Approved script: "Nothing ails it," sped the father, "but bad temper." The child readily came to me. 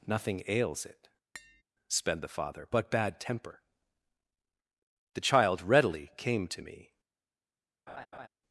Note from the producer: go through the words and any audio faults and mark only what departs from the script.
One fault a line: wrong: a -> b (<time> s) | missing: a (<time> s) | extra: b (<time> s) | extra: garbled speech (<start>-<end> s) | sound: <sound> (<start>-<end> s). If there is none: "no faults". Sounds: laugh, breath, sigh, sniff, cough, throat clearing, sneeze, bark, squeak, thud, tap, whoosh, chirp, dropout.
sound: tap (1.3-1.6 s)
sound: laugh (7.9-8.3 s)